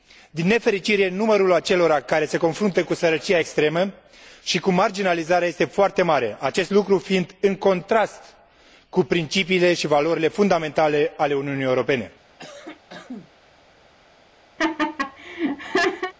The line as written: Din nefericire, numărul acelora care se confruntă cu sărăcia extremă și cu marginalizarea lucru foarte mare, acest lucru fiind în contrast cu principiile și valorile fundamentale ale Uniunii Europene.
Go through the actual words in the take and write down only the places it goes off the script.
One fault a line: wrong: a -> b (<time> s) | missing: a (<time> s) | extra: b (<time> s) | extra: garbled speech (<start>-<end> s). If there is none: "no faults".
wrong: lucru -> este (5.5 s)